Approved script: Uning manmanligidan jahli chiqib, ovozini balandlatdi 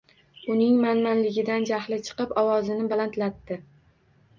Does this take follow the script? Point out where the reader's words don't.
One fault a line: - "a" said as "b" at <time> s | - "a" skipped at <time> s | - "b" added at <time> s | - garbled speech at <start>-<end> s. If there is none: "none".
none